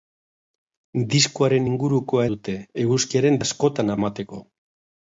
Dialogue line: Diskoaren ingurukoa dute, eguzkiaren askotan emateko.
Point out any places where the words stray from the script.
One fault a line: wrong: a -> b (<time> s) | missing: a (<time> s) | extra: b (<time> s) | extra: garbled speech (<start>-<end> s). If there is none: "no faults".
no faults